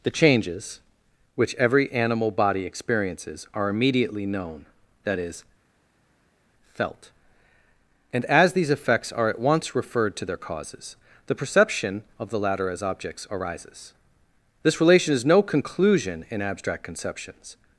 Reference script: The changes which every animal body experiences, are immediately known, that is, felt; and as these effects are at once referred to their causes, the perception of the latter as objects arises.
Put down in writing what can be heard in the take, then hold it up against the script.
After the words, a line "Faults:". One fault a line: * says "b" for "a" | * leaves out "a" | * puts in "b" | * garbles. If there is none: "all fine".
The changes which every animal body experiences, are immediately known, that is, felt; and as these effects are at once referred to their causes, the perception of the latter as objects arises. This relation is no conclusion in abstract conceptions
Faults:
* puts in "This relation is no conclusion in abstract conceptions"